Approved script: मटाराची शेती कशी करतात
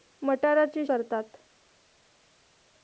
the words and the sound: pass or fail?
fail